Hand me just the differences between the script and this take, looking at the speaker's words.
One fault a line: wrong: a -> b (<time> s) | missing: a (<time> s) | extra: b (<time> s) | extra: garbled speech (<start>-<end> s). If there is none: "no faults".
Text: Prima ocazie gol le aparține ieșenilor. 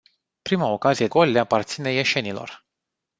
no faults